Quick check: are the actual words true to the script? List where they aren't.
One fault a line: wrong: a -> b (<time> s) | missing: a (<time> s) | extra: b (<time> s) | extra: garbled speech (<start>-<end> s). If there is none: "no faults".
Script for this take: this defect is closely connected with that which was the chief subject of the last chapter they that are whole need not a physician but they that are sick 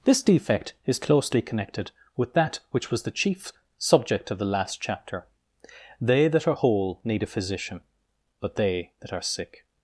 missing: not (7.2 s)